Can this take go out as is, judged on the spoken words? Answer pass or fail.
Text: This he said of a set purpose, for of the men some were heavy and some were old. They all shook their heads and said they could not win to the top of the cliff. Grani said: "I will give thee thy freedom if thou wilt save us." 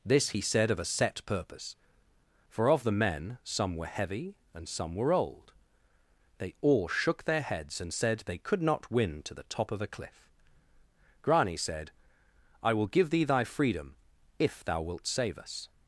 fail